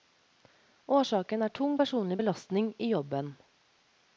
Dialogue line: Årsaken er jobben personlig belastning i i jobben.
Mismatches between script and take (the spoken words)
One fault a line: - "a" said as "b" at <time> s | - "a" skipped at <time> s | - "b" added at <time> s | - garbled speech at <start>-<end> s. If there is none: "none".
- "jobben" said as "tung" at 1.6 s
- "i" skipped at 2.9 s